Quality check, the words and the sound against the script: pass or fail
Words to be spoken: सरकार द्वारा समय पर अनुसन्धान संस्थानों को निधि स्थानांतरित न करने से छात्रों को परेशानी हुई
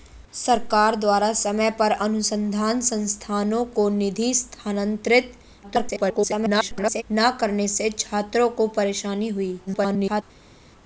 fail